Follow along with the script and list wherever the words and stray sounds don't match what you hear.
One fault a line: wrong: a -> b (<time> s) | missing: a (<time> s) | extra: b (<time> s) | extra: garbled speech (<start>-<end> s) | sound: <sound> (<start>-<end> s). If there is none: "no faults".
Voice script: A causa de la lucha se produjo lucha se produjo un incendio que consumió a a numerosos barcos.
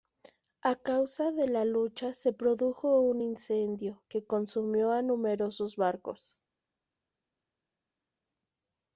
missing: lucha se produjo (3.0 s)
missing: a (5.0 s)